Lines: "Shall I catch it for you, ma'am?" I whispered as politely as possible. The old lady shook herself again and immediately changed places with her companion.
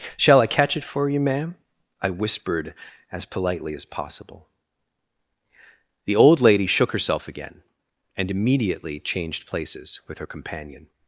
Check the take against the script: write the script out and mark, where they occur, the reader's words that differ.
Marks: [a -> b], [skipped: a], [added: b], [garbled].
"Shall I catch it for you, ma'am?" I whispered as politely as possible. The old lady shook herself again and immediately changed places with her companion.